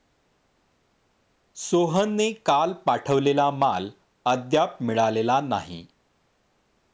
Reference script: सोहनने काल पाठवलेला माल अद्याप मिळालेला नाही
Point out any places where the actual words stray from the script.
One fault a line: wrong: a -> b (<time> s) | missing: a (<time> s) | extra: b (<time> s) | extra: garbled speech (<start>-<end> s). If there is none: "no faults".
no faults